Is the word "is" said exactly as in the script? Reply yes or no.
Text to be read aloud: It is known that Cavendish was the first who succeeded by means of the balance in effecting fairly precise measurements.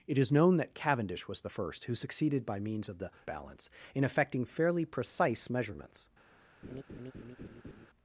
yes